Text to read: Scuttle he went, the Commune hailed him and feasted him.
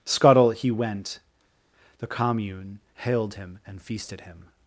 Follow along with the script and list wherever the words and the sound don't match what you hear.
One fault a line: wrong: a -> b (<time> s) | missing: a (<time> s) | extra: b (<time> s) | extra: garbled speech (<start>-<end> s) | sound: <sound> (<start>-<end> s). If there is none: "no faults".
no faults